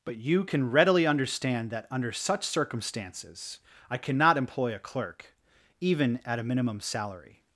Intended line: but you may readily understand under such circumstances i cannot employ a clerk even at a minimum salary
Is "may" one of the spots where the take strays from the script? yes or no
yes